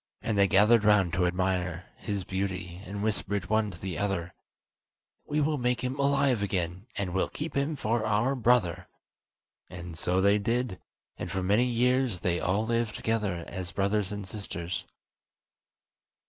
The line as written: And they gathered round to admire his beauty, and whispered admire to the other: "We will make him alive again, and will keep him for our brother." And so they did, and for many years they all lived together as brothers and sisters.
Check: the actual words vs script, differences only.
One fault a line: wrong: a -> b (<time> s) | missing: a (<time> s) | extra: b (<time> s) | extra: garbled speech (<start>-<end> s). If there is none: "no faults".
wrong: admire -> one (3.5 s)